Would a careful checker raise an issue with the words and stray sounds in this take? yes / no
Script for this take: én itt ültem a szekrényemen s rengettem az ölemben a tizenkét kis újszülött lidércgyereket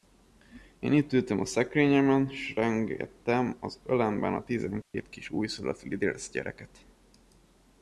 yes